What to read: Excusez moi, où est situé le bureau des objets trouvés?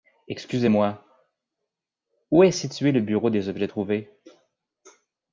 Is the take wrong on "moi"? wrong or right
right